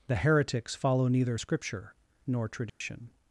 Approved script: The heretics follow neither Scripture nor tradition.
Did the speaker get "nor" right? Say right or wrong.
right